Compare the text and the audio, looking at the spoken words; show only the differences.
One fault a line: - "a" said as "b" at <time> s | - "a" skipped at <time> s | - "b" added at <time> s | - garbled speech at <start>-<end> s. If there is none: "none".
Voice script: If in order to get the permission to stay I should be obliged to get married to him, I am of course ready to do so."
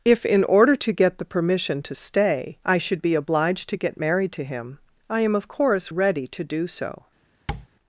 none